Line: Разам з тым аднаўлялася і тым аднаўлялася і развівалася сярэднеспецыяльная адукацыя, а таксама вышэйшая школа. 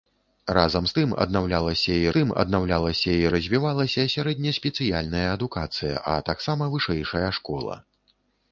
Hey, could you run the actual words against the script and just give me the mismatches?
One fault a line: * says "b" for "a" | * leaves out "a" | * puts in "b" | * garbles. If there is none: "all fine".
all fine